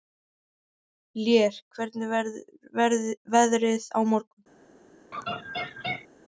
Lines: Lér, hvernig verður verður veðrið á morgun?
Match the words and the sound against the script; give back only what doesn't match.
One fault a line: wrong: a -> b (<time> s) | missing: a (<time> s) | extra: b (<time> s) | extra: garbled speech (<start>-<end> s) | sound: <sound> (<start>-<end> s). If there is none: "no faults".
missing: verður (3.0 s)
sound: laugh (5.1-6.1 s)